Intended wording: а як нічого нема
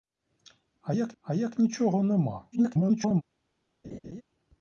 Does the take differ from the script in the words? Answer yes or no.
yes